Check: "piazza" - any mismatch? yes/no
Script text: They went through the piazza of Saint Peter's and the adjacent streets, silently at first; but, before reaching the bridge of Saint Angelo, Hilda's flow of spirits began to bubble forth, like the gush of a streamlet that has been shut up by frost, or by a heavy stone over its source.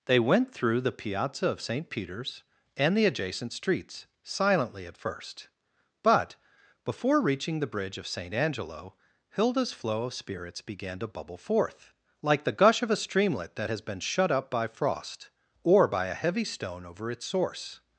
no